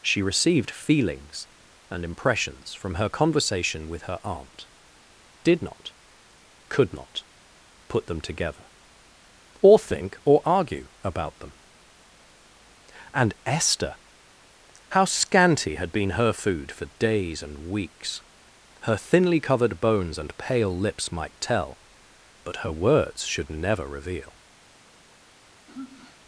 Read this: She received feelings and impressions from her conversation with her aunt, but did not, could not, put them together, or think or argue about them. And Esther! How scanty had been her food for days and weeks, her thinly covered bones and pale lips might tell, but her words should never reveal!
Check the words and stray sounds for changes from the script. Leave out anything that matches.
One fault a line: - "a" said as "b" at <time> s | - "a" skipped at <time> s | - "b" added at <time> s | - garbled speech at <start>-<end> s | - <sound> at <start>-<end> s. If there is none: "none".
- "but" skipped at 4.7 s
- sigh at 25.7-26.2 s